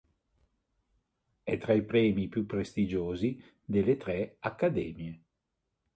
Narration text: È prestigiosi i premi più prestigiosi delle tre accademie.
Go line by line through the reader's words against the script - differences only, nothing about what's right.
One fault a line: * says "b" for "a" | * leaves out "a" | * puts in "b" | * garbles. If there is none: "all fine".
* says "tra" for "prestigiosi"